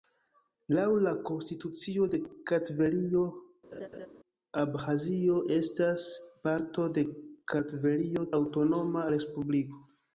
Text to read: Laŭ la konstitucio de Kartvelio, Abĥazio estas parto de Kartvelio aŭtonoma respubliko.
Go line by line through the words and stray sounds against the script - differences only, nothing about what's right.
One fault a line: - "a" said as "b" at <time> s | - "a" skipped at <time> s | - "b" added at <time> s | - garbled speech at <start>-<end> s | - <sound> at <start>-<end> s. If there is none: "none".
- laugh at 3.7-4.1 s